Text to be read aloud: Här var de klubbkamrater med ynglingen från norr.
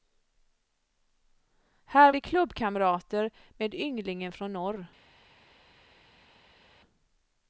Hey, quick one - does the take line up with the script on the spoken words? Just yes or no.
no